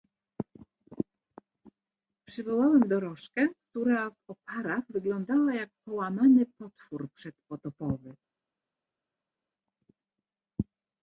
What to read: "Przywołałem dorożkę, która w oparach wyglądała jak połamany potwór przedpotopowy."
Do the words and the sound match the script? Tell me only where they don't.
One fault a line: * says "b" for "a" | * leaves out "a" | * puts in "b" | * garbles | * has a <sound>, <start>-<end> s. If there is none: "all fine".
all fine